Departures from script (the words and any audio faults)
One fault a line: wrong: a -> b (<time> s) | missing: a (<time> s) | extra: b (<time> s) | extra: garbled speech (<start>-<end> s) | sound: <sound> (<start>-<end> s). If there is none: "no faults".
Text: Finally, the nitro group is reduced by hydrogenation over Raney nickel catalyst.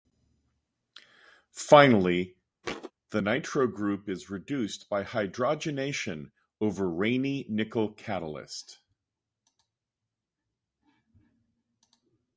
sound: thud (2.6-2.9 s)